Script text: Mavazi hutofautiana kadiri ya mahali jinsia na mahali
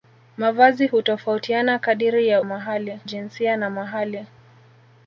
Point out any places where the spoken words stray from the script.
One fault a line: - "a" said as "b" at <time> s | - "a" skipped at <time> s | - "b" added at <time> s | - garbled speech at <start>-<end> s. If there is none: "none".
none